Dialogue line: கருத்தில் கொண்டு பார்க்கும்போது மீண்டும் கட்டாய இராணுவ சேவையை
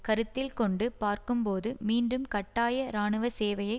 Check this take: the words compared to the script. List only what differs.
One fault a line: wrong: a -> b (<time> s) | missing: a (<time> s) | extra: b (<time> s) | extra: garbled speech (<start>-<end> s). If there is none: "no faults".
no faults